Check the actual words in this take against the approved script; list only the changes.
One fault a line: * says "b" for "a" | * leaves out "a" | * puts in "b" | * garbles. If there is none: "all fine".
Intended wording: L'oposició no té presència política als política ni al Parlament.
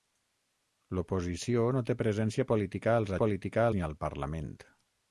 all fine